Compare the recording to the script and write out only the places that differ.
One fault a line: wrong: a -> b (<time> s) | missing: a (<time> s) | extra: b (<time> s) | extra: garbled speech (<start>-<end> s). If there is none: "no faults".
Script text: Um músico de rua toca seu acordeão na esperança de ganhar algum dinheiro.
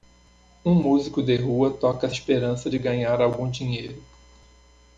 missing: seu acordeão na (2.1 s)